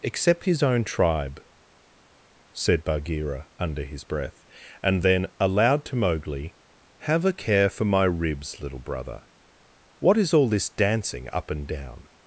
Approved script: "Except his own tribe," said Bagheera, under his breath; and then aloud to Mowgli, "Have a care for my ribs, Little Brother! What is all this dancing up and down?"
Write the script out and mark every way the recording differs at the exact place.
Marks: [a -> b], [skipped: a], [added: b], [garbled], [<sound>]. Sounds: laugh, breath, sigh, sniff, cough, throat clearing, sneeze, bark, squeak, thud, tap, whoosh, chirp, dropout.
"Except his own tribe," said Bagheera, under his breath; and then aloud to Mowgli, "Have a care for my ribs, Little Brother! What is all this dancing up and down?"